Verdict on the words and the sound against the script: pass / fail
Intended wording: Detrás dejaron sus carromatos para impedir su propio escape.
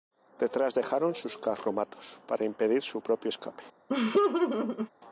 fail